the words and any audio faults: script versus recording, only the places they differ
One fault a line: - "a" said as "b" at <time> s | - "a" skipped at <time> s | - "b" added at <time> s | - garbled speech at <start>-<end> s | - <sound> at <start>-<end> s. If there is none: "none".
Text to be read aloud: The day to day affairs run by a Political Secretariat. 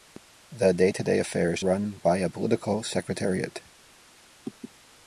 none